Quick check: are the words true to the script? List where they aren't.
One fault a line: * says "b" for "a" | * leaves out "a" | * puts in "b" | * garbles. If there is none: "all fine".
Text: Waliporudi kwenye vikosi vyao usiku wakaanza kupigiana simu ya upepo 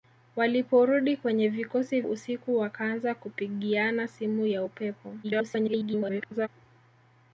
* leaves out "vyao"
* garbles